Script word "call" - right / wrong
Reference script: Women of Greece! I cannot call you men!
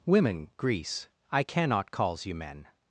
wrong